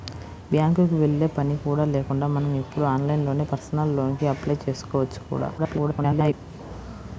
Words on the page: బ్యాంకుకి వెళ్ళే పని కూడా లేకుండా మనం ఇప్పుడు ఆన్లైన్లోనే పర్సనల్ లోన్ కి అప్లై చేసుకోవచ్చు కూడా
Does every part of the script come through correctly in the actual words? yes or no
no